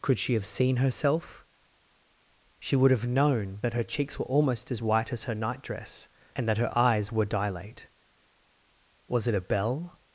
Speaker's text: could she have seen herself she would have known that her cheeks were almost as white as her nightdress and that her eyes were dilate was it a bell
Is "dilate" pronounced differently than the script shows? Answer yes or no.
no